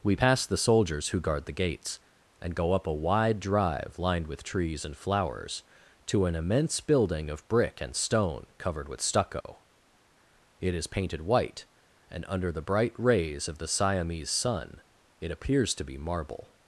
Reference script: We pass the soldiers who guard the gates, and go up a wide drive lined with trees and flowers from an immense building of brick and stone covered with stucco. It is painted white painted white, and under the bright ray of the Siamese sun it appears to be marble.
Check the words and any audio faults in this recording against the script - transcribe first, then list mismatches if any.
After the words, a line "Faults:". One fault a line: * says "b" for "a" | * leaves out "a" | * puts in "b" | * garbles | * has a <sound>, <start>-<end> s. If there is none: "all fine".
We pass the soldiers who guard the gates, and go up a wide drive lined with trees and flowers to an immense building of brick and stone covered with stucco. It is painted white, and under the bright rays of the Siamese sun it appears to be marble.
Faults:
* says "to" for "from"
* has a dropout, 9.4-9.4 s
* leaves out "painted white"
* says "rays" for "ray"